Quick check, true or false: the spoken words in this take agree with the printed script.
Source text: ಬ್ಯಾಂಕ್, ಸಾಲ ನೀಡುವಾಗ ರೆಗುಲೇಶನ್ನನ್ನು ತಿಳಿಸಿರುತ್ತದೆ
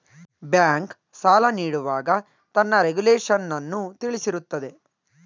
false